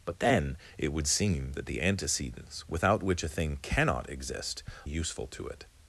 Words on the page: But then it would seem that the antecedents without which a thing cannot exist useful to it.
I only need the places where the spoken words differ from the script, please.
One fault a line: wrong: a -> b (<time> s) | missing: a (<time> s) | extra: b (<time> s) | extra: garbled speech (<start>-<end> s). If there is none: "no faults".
no faults